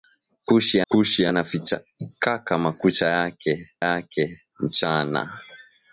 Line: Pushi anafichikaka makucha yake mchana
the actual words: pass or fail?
fail